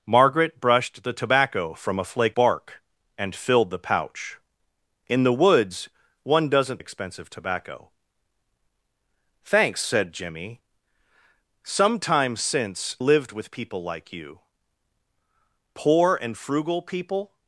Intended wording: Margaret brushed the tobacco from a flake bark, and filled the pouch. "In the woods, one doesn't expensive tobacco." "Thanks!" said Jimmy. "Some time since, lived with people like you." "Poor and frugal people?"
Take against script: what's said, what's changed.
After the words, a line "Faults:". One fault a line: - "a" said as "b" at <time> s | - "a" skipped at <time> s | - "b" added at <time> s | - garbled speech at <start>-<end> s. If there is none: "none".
Margaret brushed the tobacco from a flake bark, and filled the pouch. "In the woods, one doesn't expensive tobacco." "Thanks!" said Jimmy. "Some time since, lived with people like you." "Poor and frugal people?"
Faults:
none